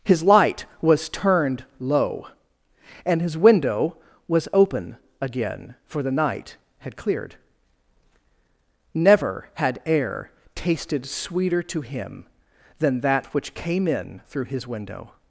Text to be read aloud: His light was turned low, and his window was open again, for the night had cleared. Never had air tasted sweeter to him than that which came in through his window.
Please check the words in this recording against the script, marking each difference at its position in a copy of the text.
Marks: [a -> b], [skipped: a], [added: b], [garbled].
His light was turned low, and his window was open again, for the night had cleared. Never had air tasted sweeter to him than that which came in through his window.